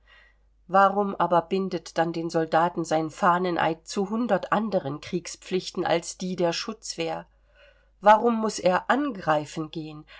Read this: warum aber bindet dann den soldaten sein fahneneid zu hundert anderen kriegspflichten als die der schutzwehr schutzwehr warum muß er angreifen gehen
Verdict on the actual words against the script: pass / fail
fail